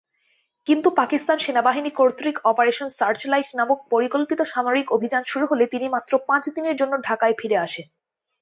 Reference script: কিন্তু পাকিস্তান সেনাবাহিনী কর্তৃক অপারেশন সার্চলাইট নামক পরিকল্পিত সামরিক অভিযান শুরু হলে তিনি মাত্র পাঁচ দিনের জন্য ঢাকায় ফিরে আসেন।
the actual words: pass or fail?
pass